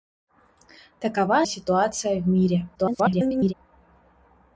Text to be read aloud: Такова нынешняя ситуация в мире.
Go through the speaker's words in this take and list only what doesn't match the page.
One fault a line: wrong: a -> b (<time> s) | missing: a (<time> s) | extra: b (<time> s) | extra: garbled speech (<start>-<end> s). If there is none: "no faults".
missing: нынешняя (1.5 s)
extra: garbled speech (2.7-3.5 s)